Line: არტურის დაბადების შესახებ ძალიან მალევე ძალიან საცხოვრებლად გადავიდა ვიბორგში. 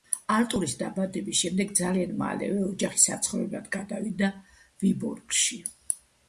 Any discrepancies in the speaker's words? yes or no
yes